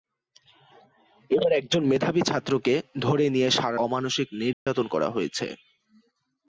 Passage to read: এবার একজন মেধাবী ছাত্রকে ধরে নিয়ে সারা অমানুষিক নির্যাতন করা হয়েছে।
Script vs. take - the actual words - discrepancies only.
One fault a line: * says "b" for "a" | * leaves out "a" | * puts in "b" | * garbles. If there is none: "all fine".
all fine